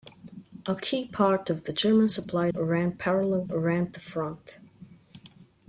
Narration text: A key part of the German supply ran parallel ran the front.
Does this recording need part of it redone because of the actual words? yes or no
no